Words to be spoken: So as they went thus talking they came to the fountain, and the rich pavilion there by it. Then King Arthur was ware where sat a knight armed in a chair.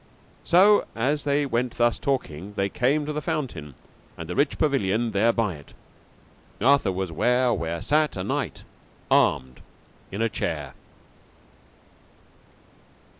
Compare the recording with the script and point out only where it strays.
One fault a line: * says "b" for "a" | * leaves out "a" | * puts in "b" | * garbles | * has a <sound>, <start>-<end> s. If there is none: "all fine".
* leaves out "Then King"